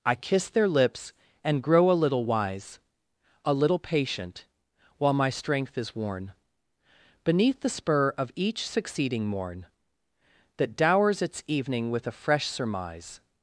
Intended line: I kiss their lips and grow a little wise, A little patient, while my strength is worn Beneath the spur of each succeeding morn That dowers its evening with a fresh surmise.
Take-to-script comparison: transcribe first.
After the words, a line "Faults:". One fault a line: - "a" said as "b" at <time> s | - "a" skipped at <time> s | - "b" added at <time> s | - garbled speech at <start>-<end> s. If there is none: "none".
I kiss their lips and grow a little wise, A little patient, while my strength is worn Beneath the spur of each succeeding morn That dowers its evening with a fresh surmise.
Faults:
none